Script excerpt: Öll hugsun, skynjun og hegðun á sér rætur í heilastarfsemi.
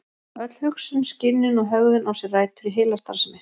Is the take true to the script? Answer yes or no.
yes